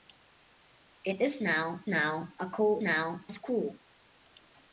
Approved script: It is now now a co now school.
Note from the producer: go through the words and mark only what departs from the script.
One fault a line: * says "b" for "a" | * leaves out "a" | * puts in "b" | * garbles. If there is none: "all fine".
all fine